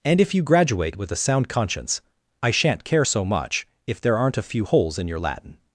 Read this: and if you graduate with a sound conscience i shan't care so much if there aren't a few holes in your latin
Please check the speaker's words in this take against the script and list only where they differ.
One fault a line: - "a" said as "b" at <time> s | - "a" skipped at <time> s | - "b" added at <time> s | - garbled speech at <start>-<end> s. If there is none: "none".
none